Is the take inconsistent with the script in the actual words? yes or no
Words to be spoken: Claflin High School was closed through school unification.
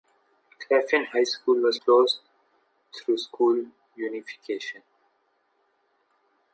no